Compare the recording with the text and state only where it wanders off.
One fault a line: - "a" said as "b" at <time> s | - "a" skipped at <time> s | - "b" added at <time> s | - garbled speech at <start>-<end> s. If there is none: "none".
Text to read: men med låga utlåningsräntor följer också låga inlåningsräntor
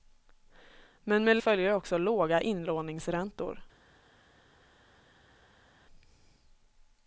- "låga utlåningsräntor" skipped at 1.4 s